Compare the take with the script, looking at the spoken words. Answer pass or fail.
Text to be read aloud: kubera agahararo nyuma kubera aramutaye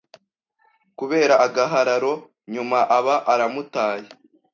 fail